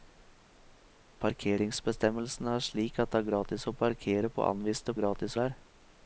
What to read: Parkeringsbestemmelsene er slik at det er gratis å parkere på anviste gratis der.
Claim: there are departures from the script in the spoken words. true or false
false